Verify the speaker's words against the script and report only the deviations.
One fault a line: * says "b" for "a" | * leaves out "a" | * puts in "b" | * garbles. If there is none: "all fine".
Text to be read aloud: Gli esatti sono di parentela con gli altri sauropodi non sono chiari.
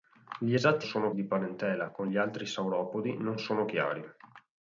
all fine